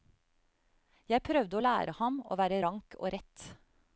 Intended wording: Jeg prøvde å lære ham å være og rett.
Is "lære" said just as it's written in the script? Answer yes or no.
yes